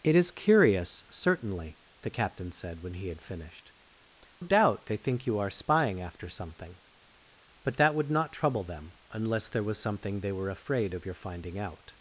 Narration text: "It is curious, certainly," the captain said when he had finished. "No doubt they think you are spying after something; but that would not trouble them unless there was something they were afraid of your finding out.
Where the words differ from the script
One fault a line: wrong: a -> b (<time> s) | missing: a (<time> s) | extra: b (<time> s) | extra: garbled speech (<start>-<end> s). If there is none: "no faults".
missing: No (3.7 s)